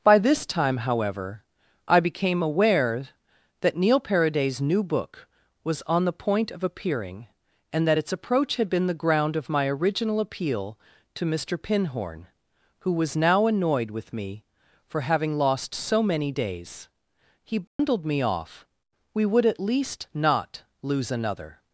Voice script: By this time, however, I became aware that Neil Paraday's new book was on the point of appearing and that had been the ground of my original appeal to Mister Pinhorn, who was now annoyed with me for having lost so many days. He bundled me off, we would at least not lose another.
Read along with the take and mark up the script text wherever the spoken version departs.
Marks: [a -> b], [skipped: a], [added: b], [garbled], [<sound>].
By this time, however, I became aware that Neil Paraday's new book was on the point of appearing and that [added: its approach] had been the ground of my original appeal to Mister Pinhorn, who was now annoyed with me for having lost so many days. He bundled [dropout] me off, we would at least not lose another.